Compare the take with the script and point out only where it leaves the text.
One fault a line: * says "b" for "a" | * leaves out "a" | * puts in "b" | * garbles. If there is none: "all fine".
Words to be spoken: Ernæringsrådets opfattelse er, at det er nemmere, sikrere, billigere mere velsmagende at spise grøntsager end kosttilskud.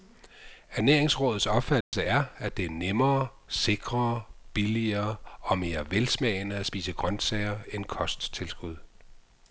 * puts in "og"